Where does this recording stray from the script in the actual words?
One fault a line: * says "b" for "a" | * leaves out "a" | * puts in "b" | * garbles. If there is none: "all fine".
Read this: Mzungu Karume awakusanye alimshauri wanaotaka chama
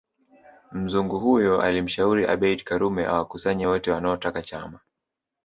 * puts in "huyo alimshauri Abeid"
* says "wote" for "alimshauri"